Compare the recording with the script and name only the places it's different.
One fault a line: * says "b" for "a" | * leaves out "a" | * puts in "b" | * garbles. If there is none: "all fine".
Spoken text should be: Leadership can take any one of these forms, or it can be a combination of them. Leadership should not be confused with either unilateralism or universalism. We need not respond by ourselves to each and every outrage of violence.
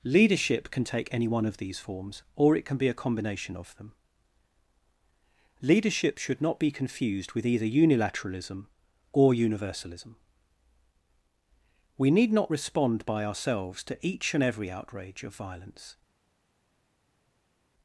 all fine